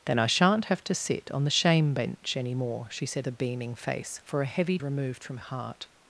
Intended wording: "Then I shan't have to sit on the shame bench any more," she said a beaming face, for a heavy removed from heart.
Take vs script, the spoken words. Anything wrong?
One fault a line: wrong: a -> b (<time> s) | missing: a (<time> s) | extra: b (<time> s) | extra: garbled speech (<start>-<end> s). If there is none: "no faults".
no faults